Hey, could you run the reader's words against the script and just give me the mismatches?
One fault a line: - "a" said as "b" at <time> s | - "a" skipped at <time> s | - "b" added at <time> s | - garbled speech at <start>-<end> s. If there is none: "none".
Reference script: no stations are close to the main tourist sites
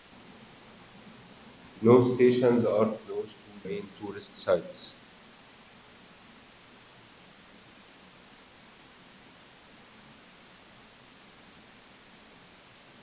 - "the" skipped at 3.6 s